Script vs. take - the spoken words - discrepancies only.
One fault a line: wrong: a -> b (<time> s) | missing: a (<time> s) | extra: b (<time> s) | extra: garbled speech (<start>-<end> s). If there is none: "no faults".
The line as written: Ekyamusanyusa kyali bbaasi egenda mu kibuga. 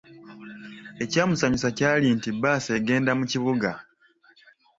extra: nti (2.2 s)